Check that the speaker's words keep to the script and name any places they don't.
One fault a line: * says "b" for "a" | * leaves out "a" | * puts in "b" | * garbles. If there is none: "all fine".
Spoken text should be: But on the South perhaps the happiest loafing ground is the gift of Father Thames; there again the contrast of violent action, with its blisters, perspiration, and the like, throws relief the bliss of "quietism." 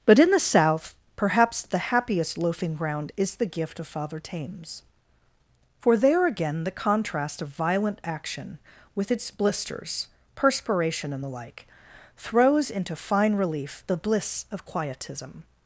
* says "in" for "on"
* puts in "for"
* puts in "into fine"